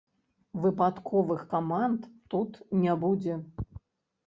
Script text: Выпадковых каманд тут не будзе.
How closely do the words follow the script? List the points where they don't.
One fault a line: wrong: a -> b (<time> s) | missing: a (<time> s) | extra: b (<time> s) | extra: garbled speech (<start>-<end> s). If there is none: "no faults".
no faults